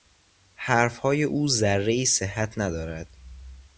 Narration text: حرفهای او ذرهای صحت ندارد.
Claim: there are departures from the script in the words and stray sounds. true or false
false